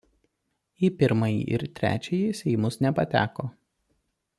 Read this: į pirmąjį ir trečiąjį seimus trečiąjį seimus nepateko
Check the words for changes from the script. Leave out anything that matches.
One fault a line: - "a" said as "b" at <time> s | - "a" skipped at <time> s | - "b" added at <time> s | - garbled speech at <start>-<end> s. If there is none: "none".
- "trečiąjį seimus" skipped at 2.8 s